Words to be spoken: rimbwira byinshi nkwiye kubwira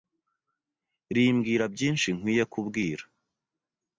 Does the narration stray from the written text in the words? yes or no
no